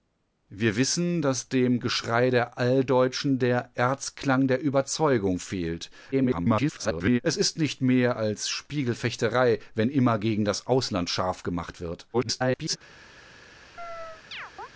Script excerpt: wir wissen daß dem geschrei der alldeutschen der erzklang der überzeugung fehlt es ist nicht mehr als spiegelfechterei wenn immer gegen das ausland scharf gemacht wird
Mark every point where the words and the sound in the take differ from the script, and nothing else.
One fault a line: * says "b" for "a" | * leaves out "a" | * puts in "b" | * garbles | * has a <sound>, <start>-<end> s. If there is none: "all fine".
* garbles
* garbles
* has a chirp, 13.8-14.7 s